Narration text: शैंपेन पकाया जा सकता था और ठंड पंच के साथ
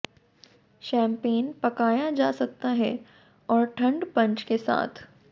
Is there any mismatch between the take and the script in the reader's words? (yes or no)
yes